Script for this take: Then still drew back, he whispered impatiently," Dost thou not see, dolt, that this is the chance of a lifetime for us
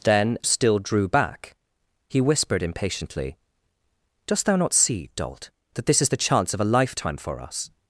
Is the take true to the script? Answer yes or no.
yes